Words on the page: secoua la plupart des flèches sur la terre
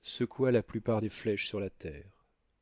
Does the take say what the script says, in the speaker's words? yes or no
yes